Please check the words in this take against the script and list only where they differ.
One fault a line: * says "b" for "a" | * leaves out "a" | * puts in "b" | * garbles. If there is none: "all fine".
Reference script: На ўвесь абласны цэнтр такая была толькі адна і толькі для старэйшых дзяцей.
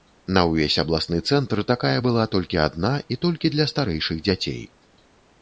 all fine